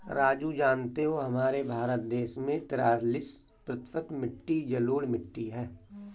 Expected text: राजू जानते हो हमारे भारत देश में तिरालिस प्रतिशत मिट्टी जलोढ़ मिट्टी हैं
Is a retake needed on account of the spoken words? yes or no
no